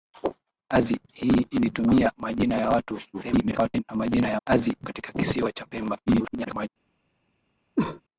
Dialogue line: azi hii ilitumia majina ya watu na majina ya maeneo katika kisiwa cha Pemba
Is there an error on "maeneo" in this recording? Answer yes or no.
yes